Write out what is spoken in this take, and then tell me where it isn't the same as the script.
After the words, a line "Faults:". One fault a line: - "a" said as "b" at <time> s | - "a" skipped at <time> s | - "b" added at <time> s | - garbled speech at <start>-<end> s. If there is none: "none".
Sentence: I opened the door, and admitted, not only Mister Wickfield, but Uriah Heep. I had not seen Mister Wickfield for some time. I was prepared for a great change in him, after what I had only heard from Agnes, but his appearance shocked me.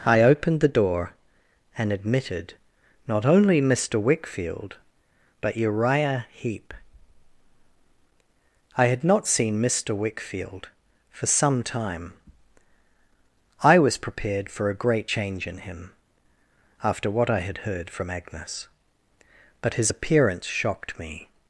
I opened the door, and admitted, not only Mister Wickfield, but Uriah Heep. I had not seen Mister Wickfield for some time. I was prepared for a great change in him, after what I had heard from Agnes, but his appearance shocked me.
Faults:
- "only" skipped at 17.6 s